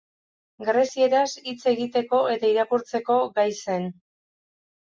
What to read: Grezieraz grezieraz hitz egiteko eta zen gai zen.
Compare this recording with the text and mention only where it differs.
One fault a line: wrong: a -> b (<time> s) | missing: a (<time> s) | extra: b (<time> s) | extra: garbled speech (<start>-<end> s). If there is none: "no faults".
missing: grezieraz (1.3 s)
wrong: zen -> irakurtzeko (2.5 s)